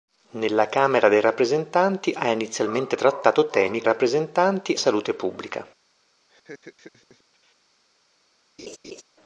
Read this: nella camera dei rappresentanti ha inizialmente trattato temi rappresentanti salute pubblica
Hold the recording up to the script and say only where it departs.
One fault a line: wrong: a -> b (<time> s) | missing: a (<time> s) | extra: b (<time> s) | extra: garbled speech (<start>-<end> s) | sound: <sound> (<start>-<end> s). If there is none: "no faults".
sound: laugh (6.3-7.6 s)
sound: laugh (8.6-9.0 s)